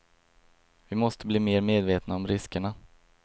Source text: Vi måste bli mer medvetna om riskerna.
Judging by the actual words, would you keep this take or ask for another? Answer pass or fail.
pass